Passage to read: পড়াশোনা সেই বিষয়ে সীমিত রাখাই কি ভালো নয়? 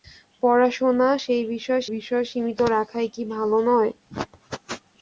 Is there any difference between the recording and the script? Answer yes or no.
yes